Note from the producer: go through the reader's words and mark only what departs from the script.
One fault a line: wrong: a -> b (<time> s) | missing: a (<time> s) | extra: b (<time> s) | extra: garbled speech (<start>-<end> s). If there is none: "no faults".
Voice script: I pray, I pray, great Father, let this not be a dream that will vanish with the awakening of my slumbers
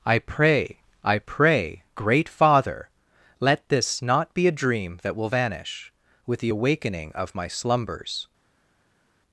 no faults